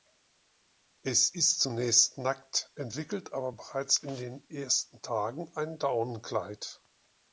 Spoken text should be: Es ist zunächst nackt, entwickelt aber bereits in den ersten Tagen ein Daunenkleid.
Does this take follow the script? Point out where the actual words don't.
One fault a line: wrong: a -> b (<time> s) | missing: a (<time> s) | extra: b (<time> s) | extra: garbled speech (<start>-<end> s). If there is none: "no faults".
no faults